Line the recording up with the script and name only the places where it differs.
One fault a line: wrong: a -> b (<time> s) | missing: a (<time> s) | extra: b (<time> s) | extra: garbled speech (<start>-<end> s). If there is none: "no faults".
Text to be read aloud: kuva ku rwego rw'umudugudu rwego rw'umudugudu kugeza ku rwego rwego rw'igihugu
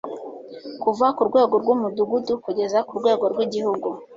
missing: rwego rw'umudugudu (2.3 s)
missing: rwego (3.2 s)